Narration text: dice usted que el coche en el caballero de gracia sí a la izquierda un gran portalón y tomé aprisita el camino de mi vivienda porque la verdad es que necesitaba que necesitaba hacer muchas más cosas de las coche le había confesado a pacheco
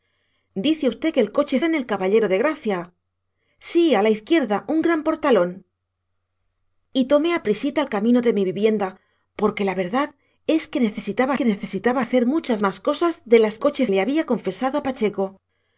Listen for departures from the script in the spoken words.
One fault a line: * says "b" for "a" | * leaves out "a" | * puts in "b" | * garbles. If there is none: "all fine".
all fine